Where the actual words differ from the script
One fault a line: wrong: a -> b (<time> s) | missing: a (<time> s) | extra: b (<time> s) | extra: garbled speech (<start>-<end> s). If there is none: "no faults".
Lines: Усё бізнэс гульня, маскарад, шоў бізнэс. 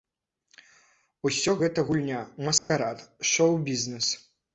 wrong: бізнэс -> гэта (1.6 s)